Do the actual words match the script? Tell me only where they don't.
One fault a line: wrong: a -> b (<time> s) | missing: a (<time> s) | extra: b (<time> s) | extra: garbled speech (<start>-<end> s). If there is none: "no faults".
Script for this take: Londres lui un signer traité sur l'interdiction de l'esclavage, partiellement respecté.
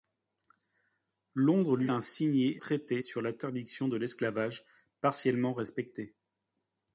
no faults